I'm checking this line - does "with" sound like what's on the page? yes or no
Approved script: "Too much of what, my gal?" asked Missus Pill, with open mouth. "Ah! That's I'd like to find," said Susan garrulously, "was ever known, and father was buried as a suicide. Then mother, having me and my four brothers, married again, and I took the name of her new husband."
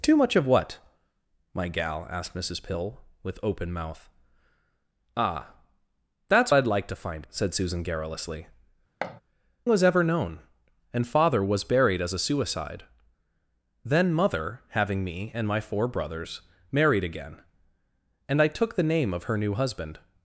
yes